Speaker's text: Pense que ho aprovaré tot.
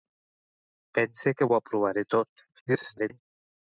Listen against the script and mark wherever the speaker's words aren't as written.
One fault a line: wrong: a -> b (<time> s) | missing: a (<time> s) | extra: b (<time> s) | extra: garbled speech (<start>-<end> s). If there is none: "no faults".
extra: garbled speech (2.5-3.2 s)